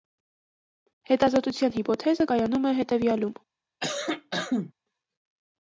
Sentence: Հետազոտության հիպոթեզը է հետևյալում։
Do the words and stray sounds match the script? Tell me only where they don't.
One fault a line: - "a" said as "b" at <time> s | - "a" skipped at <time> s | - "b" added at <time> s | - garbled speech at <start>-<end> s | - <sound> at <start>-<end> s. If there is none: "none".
- "կայանում" added at 2.3 s
- cough at 3.8-4.7 s